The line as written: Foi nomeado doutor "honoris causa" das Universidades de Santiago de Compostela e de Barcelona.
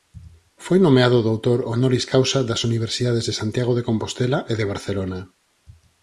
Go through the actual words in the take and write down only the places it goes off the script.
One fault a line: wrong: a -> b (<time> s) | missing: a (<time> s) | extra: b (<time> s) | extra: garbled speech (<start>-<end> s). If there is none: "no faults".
no faults